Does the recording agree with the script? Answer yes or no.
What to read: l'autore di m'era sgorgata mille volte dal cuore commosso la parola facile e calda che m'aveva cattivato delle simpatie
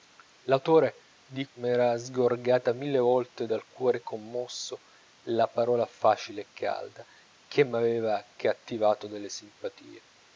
yes